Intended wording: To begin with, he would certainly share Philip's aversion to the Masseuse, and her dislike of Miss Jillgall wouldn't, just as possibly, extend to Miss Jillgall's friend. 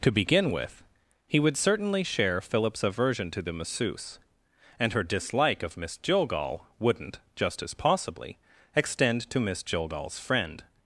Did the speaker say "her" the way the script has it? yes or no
yes